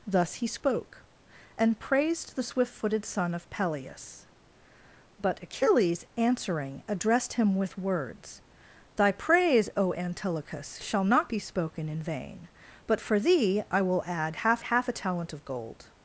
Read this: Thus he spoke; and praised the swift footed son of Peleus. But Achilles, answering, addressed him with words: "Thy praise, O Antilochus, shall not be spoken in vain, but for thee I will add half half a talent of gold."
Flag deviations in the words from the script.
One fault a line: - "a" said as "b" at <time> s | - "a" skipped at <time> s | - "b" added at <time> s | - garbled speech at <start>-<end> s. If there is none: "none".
none